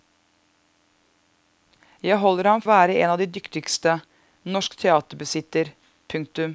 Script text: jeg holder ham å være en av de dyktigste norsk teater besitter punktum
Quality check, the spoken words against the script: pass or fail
pass